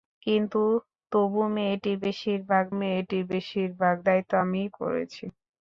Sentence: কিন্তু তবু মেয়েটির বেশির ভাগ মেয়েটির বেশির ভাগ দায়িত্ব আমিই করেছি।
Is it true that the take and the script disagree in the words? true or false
false